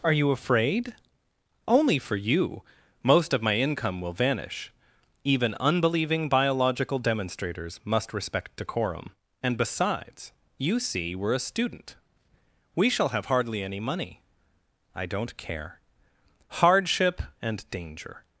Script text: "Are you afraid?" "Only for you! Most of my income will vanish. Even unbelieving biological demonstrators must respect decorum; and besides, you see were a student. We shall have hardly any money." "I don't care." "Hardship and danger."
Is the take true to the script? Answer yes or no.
yes